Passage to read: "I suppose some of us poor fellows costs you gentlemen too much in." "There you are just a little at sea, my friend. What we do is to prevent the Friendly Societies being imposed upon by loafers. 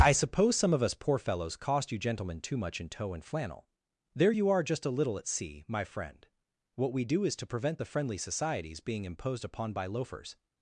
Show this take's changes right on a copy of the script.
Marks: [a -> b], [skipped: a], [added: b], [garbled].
"I suppose some of us poor fellows [costs -> cost] you gentlemen too much in." [added: tow and flannel] "There you are just a little at sea, my friend. What we do is to prevent the Friendly Societies being imposed upon by loafers.